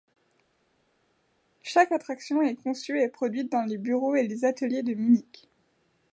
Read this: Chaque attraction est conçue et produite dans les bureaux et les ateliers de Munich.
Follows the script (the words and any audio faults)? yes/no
yes